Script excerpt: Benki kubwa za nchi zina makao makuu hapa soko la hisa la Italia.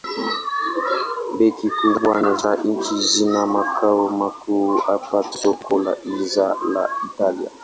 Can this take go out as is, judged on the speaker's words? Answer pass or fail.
pass